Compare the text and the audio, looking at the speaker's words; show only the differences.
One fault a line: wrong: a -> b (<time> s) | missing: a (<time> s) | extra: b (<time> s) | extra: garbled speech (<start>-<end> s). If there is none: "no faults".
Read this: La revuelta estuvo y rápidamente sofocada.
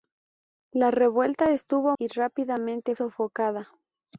no faults